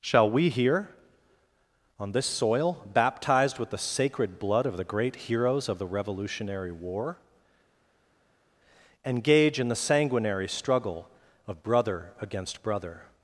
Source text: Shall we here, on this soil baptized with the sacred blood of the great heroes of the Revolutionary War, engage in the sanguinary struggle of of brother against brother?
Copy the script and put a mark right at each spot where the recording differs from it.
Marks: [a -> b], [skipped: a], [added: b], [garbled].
Shall we here, on this soil baptized with the sacred blood of the great heroes of the Revolutionary War, engage in the sanguinary struggle of [skipped: of] brother against brother?